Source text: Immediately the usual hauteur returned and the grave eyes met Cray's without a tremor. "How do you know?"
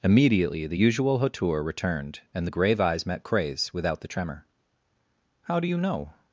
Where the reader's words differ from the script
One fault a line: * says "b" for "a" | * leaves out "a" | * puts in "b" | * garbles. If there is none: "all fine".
* says "the" for "a"